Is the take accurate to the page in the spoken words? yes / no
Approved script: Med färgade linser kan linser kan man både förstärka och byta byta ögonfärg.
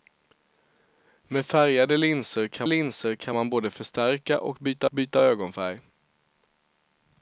yes